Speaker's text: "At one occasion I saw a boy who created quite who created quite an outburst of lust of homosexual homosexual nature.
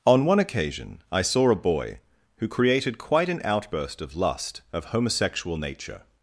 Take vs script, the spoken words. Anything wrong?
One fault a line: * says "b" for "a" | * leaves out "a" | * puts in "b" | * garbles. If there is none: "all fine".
* says "On" for "At"
* leaves out "who created quite"
* leaves out "homosexual"